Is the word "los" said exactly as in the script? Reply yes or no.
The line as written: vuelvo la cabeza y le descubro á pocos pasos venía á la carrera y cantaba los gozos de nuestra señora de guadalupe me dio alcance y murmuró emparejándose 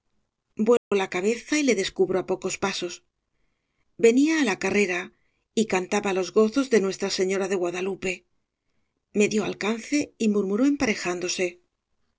yes